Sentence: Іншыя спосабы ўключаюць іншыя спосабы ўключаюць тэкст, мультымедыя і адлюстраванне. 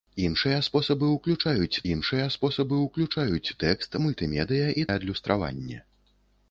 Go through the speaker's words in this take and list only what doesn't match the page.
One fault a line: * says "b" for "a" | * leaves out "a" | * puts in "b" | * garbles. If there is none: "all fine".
all fine